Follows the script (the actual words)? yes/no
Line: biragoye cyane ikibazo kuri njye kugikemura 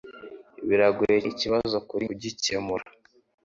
no